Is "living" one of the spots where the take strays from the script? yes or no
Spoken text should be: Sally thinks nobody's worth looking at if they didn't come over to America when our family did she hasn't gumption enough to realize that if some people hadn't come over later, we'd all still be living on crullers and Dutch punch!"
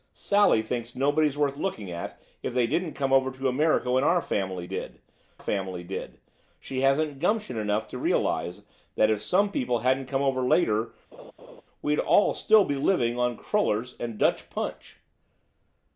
no